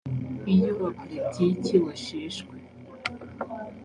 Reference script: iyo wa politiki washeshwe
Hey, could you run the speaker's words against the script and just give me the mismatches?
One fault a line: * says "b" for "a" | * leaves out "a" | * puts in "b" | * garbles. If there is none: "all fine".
all fine